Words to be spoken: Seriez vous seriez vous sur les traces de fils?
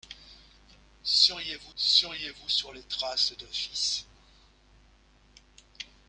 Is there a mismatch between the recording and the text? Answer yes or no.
no